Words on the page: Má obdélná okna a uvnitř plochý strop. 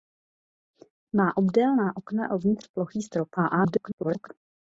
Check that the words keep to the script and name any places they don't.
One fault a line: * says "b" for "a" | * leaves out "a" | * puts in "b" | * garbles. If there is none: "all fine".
* garbles